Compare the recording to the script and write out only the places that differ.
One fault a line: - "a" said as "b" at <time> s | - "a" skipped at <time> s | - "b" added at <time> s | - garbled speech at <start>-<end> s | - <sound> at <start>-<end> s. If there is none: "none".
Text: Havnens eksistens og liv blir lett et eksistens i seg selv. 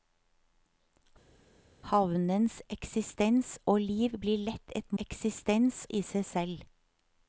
none